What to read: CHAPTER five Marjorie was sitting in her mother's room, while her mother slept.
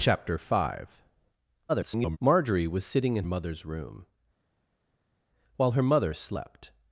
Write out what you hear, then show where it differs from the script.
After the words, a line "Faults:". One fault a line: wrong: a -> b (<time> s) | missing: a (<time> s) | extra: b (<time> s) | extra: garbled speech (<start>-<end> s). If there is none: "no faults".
CHAPTER five [garbled] Marjorie was sitting in mother's room, while her mother slept.
Faults:
extra: garbled speech (1.7-2.2 s)
missing: her (3.2 s)